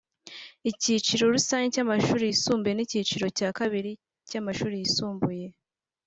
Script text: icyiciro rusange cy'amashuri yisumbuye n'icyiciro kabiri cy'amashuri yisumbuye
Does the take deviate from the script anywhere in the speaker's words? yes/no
yes